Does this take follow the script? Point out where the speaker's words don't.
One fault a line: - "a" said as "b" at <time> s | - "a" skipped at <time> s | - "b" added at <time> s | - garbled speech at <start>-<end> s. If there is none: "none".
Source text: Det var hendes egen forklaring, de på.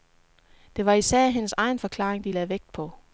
- "især" added at 0.9 s
- "lagde vægt" added at 2.3 s